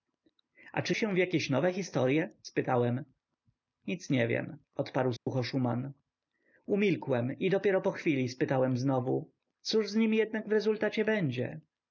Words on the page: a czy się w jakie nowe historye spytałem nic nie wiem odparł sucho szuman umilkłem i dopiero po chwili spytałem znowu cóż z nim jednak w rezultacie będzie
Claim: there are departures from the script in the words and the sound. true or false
true